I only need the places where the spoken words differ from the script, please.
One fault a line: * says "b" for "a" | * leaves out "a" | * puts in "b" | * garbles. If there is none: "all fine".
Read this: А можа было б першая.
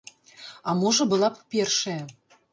* says "была" for "было"